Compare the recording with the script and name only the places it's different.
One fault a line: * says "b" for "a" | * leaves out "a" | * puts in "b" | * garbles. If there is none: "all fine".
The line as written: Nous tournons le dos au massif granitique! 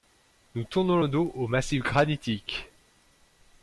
all fine